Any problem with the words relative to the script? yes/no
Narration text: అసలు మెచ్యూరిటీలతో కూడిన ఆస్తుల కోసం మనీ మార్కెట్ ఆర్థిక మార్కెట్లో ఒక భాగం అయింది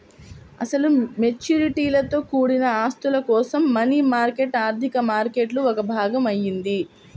no